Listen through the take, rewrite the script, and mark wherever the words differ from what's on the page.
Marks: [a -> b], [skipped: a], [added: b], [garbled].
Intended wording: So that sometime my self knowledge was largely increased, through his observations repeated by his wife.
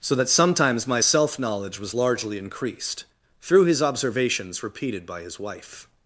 So that [sometime -> sometimes] my self knowledge was largely increased, through his observations repeated by his wife.